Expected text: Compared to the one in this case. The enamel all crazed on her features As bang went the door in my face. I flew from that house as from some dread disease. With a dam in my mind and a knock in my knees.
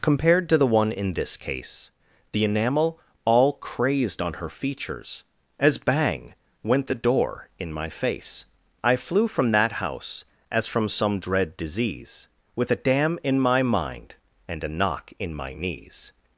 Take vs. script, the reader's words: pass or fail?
pass